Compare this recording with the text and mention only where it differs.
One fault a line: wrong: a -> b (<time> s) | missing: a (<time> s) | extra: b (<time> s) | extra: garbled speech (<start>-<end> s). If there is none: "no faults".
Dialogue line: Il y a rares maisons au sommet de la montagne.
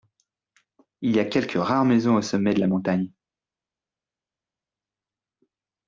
extra: quelques (1.2 s)